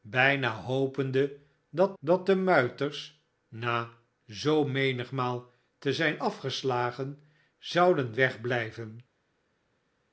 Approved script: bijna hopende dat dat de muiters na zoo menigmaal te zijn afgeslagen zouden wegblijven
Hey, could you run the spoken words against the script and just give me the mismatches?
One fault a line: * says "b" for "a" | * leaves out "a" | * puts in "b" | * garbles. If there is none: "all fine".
all fine